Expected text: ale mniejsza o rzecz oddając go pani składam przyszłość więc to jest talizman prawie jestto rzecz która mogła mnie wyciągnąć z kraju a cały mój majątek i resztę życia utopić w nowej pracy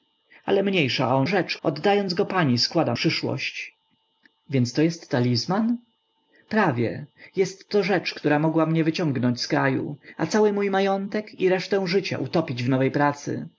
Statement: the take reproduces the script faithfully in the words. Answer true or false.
true